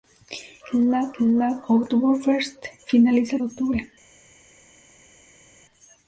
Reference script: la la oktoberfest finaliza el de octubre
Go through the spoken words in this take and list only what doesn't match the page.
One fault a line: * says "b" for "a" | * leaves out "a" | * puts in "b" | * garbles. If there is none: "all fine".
all fine